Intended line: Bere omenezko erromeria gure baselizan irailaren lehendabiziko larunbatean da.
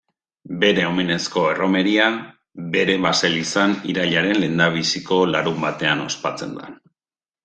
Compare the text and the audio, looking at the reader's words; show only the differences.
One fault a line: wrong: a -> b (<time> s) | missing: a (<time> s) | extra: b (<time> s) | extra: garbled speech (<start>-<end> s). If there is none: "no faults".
wrong: gure -> bere (2.8 s)
extra: ospatzen (6.1 s)